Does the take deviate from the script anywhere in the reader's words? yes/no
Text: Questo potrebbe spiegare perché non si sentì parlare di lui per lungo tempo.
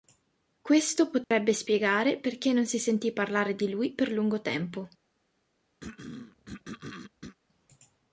no